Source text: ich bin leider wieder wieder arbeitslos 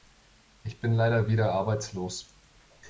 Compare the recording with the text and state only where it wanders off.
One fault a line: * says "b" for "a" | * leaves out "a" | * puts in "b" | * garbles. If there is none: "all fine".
* leaves out "wieder"